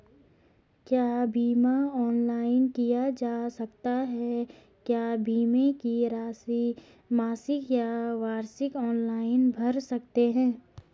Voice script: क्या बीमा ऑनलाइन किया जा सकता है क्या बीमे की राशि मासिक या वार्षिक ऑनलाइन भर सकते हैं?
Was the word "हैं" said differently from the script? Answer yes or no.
no